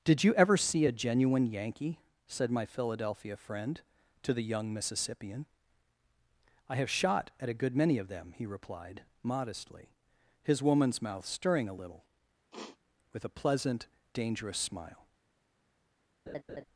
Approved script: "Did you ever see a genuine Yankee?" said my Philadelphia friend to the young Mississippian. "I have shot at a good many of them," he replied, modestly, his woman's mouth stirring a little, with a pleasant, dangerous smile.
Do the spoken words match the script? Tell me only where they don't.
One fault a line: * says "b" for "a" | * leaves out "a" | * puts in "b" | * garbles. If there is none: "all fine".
all fine